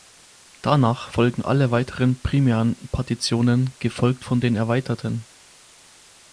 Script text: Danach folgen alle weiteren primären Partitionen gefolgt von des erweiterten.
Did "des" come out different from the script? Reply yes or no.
yes